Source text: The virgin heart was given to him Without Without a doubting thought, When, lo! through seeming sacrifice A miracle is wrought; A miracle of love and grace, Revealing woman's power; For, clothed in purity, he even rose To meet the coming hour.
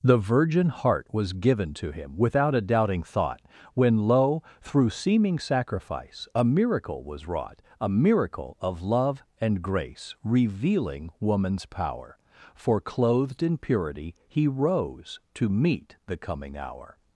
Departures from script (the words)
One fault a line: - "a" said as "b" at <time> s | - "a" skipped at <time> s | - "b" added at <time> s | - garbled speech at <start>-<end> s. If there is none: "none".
- "Without" skipped at 2.5 s
- "is" said as "was" at 7.0 s
- "even" skipped at 14.5 s